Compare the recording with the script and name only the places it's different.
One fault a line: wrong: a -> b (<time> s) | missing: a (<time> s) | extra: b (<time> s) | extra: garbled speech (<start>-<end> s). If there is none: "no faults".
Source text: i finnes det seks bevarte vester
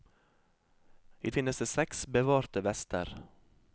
no faults